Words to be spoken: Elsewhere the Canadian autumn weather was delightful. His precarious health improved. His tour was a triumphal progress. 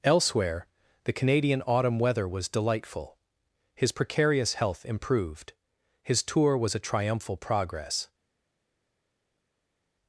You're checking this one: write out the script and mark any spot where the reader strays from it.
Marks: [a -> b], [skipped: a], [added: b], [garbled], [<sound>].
Elsewhere the Canadian autumn weather was delightful. His precarious health improved. His tour was a triumphal progress.